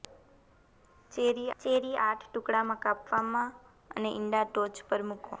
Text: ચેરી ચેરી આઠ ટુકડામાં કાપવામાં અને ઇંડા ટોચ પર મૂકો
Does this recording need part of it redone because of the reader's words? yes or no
no